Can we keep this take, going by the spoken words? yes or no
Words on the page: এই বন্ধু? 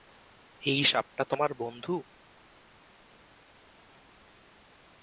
no